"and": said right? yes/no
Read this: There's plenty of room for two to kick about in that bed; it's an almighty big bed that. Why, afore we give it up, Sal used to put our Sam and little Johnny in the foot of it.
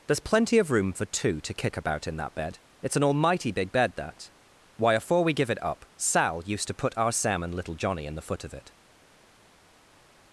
yes